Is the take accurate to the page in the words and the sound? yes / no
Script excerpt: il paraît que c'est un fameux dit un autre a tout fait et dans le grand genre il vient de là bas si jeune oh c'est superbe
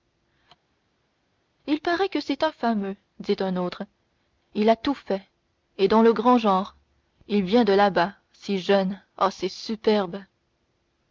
no